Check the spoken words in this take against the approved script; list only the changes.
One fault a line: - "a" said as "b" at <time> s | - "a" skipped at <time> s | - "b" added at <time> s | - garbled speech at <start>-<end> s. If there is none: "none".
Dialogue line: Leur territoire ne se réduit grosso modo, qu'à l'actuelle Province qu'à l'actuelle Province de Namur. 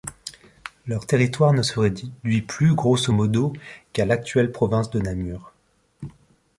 - "plus" added at 2.4 s
- "qu'à l'actuelle Province" skipped at 4.9 s